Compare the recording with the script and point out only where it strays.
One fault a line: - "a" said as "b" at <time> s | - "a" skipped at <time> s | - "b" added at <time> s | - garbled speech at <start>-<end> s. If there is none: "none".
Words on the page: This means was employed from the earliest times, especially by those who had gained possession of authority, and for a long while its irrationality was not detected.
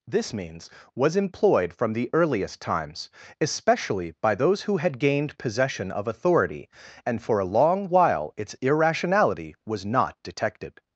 none